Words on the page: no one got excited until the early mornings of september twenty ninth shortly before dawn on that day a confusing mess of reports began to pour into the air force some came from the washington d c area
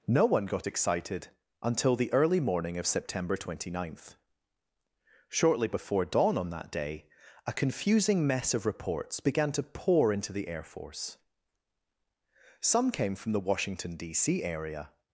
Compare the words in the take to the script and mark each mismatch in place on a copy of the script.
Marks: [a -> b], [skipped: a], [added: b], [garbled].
no one got excited until the early [mornings -> morning] of september twenty ninth shortly before dawn on that day a confusing mess of reports began to pour into the air force some came from the washington d c area